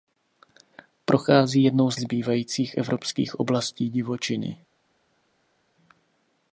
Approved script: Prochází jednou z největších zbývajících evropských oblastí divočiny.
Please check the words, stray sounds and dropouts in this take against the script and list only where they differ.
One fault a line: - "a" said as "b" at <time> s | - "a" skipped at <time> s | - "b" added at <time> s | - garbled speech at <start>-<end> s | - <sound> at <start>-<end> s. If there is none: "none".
- "největších" skipped at 2.0 s